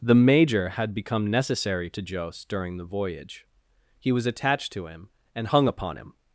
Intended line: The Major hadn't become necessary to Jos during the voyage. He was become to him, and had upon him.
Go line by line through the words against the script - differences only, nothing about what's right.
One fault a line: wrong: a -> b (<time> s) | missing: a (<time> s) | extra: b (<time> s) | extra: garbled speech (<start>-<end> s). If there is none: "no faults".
wrong: hadn't -> had (0.7 s)
wrong: become -> attached (4.2 s)
wrong: had -> hung (5.4 s)